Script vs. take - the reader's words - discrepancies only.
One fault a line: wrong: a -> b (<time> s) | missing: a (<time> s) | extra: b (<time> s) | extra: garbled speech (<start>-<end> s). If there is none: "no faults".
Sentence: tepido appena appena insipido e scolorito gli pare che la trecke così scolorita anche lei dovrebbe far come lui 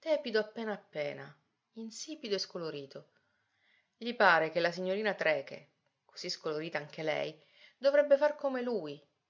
extra: signorina (4.7 s)